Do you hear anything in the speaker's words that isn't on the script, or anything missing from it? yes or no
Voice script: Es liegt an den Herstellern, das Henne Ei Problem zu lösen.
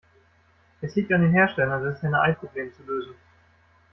no